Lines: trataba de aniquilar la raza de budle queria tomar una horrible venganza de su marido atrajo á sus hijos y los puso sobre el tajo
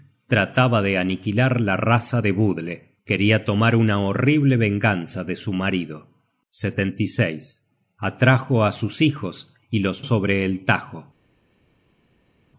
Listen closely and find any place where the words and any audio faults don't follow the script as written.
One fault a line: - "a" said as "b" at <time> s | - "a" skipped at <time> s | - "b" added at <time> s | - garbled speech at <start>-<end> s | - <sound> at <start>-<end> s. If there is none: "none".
- "puso" skipped at 10.0 s